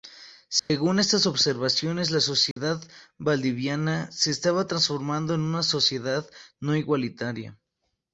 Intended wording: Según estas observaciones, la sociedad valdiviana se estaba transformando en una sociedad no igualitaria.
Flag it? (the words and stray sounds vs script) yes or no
yes